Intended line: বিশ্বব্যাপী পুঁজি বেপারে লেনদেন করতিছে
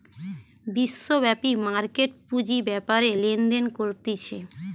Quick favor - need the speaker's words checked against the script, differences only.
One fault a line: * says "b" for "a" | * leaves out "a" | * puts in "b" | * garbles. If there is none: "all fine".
* puts in "মার্কেট"